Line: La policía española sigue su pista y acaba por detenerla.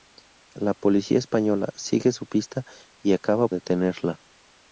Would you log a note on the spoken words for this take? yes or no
yes